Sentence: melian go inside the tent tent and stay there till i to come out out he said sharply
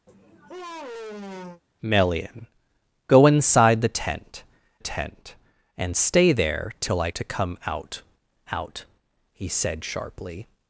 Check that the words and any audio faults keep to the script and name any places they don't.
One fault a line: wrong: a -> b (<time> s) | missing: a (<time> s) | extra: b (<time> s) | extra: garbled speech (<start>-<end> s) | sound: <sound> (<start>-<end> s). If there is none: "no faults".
sound: sigh (0.1-1.6 s)